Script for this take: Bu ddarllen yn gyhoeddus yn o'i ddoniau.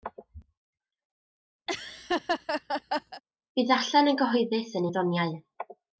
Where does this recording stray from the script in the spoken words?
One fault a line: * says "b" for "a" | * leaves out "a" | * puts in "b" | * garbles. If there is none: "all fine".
all fine